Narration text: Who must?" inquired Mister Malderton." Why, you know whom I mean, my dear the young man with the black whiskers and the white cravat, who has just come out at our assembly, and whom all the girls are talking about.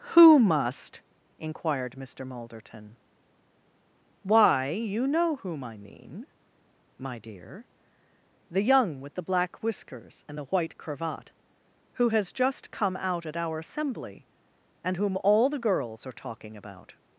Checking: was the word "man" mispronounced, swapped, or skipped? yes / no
yes